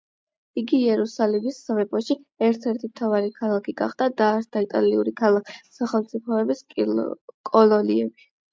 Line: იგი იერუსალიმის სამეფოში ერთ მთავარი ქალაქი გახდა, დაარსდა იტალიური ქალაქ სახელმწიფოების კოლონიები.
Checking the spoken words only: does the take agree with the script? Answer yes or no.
no